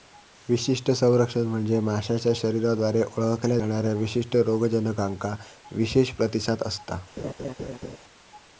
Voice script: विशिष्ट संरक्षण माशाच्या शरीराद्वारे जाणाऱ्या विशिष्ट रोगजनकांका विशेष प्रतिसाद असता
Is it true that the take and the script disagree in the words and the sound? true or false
true